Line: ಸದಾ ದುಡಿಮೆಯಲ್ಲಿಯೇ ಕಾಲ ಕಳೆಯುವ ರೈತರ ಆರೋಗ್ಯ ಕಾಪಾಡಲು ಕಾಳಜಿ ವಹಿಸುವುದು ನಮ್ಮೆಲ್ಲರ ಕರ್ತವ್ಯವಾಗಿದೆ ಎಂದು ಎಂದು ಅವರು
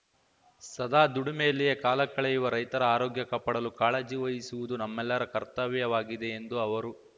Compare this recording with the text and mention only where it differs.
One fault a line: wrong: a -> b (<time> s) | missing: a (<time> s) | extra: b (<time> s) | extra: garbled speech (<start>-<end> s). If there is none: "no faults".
missing: ಎಂದು (6.6 s)